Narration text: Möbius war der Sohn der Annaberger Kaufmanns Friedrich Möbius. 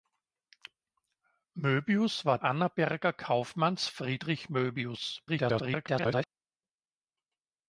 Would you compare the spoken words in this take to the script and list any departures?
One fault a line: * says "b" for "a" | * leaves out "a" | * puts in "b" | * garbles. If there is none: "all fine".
* leaves out "der Sohn der"
* garbles